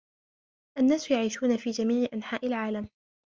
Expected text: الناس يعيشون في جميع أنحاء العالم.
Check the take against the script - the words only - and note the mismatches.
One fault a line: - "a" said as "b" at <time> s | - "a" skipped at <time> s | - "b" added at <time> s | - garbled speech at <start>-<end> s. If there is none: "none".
none